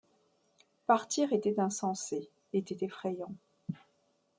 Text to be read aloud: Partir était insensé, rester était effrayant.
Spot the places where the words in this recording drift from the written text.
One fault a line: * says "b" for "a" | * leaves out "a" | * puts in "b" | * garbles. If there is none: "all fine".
* leaves out "rester"